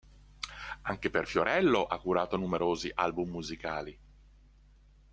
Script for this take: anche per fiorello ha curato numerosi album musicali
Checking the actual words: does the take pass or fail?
pass